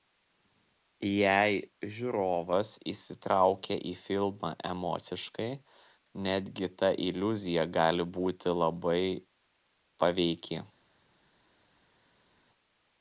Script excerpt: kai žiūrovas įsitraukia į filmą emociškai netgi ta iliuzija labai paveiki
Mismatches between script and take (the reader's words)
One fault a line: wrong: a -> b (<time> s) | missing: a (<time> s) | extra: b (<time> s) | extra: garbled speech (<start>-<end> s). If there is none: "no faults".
wrong: kai -> jei (1.1 s)
extra: gali būti (7.8 s)